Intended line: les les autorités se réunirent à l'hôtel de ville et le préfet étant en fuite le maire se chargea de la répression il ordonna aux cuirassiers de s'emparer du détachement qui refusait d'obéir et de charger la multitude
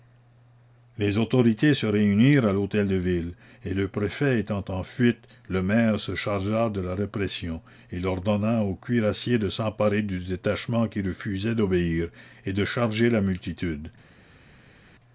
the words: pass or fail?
fail